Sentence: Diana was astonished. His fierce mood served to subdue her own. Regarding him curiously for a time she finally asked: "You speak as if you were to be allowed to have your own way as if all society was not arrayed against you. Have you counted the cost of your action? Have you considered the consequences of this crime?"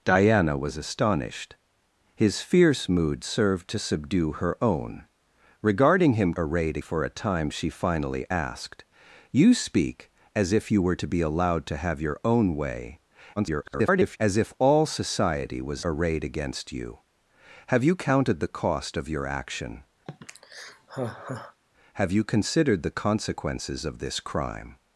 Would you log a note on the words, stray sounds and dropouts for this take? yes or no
yes